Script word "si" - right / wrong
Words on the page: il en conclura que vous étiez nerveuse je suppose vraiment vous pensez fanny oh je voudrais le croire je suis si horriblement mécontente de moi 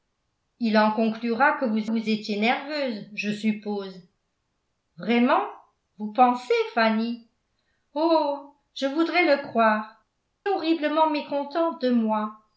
wrong